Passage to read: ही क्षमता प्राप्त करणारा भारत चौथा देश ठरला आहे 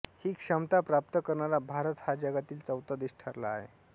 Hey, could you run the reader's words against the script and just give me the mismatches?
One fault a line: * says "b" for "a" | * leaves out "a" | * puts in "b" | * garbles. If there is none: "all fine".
* puts in "हा जगातील"